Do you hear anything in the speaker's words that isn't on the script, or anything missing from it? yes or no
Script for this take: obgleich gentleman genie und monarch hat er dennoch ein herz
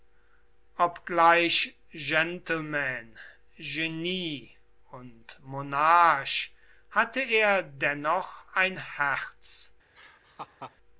yes